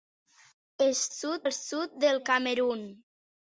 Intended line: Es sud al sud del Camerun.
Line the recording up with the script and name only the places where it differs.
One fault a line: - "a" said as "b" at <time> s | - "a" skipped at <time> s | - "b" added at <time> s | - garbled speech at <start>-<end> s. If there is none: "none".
none